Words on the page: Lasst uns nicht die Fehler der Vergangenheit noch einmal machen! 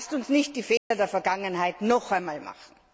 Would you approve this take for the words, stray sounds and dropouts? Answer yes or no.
no